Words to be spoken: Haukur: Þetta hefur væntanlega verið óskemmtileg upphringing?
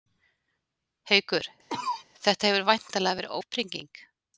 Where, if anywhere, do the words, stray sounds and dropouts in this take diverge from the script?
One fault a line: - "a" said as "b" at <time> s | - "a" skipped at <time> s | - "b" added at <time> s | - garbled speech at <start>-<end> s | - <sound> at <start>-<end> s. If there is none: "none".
- cough at 1.7-2.0 s
- "óskemmtileg" skipped at 3.3 s